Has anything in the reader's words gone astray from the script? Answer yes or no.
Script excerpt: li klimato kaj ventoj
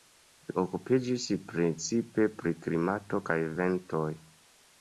yes